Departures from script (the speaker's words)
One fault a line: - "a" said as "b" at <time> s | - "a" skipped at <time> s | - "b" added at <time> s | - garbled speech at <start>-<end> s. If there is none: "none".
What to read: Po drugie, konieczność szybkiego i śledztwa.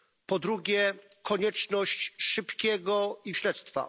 none